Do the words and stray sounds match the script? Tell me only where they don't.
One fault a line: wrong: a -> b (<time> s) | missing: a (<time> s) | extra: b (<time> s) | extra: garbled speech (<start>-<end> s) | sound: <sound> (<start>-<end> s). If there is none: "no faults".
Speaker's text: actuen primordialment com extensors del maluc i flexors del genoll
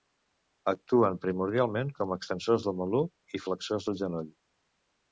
no faults